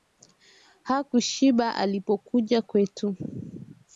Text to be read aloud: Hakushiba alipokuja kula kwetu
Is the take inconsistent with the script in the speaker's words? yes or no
yes